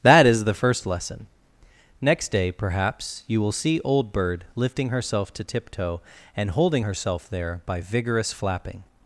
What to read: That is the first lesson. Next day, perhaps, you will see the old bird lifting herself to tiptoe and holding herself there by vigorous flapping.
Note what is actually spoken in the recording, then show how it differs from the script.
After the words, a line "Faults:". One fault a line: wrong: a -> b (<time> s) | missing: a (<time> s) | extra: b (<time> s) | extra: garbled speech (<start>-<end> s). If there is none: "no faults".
That is the first lesson. Next day, perhaps, you will see old bird lifting herself to tiptoe and holding herself there by vigorous flapping.
Faults:
missing: the (3.8 s)